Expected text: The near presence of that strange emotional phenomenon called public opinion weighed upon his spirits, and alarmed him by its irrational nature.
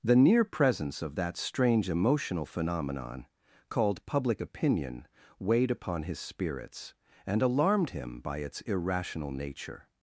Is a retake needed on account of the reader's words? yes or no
no